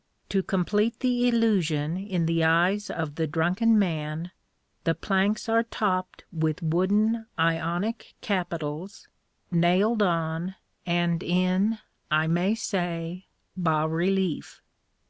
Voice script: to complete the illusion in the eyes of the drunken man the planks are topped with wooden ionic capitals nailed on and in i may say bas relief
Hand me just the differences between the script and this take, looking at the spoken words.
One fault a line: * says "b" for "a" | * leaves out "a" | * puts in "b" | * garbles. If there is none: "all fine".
all fine